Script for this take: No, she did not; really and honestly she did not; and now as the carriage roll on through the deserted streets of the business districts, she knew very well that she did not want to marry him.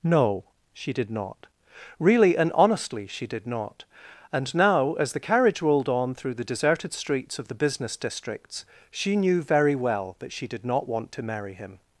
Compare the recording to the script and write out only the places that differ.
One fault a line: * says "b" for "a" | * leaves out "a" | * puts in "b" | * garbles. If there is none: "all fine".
* says "rolled" for "roll"